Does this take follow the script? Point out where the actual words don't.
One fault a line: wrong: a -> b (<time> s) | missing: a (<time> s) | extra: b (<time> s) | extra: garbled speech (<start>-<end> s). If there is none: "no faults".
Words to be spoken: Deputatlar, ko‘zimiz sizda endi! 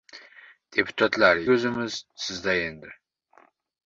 no faults